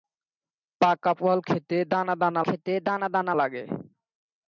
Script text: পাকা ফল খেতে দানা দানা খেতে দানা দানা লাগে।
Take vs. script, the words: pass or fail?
pass